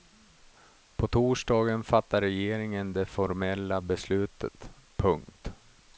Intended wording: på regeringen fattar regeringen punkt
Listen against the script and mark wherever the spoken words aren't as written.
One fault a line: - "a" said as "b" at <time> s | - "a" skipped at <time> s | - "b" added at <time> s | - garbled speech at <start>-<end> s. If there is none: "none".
- "regeringen" said as "torsdagen" at 1.0 s
- "det formella beslutet" added at 2.9 s